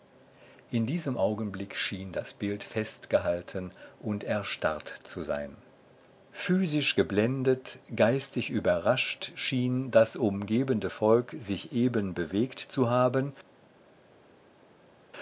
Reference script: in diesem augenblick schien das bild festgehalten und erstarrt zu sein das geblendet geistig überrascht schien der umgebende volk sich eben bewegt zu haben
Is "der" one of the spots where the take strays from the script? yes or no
yes